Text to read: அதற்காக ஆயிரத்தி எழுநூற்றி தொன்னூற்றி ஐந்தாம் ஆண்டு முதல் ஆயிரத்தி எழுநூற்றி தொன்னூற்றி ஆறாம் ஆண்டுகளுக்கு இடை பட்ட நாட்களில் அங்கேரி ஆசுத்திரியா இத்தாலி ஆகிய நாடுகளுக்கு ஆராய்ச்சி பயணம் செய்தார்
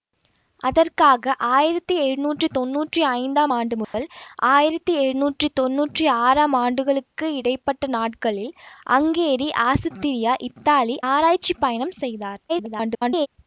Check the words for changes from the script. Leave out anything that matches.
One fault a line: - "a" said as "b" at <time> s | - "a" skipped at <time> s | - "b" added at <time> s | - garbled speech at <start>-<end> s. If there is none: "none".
- "ஆகிய நாடுகளுக்கு" skipped at 11.0 s
- garbled speech at 12.5-13.3 s